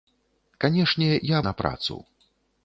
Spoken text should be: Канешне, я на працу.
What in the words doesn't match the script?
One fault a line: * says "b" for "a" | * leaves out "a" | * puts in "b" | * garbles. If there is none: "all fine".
all fine